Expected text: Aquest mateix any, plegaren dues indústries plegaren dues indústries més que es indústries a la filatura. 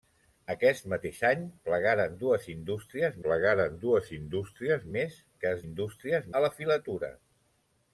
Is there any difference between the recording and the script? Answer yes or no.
no